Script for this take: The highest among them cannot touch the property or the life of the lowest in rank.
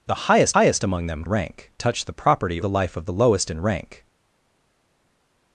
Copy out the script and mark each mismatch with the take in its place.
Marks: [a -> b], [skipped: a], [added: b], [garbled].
The highest [added: highest] among them [cannot -> rank] touch the property [skipped: or] the life of the lowest in rank.